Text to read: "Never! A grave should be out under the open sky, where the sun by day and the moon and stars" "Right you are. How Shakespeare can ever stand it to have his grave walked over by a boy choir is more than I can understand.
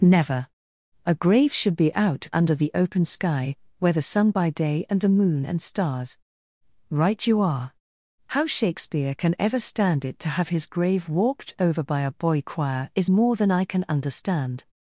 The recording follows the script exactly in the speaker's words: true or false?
true